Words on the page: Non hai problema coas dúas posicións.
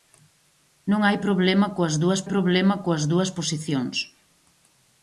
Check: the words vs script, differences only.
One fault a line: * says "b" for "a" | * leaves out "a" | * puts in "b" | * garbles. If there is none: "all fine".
* puts in "problema coas dúas"